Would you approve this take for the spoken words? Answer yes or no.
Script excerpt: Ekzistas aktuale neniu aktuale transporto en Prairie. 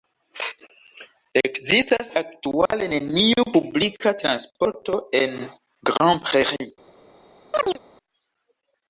no